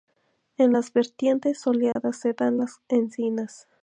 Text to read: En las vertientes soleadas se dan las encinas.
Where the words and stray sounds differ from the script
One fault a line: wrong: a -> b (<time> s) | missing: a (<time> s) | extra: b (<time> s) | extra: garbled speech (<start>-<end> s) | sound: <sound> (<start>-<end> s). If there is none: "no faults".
sound: dropout (1.9-2.0 s)